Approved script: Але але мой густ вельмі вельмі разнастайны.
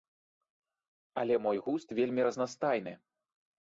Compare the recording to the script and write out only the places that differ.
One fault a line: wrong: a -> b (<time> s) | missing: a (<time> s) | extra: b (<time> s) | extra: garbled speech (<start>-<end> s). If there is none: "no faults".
missing: але (1.4 s)
missing: вельмі (2.2 s)